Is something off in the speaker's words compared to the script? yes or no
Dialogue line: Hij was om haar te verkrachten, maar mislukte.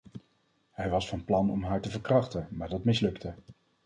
yes